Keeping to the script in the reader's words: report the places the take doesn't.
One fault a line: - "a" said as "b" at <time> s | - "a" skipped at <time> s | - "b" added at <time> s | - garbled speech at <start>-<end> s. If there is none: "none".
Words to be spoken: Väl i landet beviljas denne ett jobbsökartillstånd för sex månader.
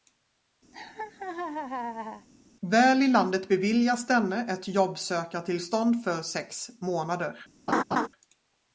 none